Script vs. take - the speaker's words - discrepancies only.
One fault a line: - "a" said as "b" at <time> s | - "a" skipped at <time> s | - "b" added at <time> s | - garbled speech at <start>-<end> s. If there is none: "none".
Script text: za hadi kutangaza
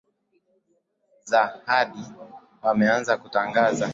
- "wameanza" added at 2.6 s